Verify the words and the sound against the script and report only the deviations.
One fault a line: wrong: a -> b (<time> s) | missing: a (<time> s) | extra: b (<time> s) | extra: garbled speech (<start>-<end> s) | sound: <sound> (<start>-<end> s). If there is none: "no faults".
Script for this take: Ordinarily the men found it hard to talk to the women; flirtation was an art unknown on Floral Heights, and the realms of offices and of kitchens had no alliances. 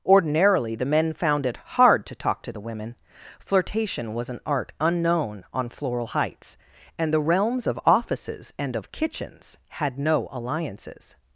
no faults